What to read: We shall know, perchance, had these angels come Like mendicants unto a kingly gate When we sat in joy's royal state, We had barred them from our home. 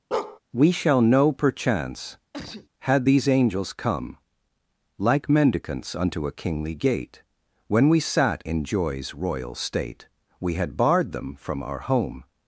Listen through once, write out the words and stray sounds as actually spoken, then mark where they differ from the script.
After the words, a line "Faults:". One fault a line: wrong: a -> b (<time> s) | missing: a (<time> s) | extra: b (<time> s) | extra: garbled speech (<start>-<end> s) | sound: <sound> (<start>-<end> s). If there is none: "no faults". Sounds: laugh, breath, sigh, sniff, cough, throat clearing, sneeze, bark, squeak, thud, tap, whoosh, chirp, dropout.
We shall know, perchance, had these angels come Like mendicants unto a kingly gate When we sat in joy's royal state, We had barred them from our home.
Faults:
sound: bark (0.1-0.4 s)
sound: sneeze (2.3-2.7 s)